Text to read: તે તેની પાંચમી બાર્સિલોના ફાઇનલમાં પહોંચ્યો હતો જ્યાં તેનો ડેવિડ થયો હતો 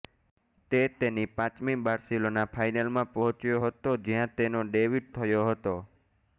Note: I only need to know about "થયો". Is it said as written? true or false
true